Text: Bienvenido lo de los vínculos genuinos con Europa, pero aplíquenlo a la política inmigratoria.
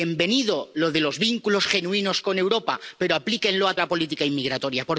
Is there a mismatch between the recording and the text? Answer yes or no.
no